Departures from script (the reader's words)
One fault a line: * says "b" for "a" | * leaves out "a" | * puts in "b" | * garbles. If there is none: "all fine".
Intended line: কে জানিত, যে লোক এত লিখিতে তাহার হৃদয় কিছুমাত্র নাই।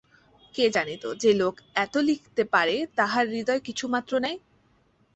* puts in "পারে"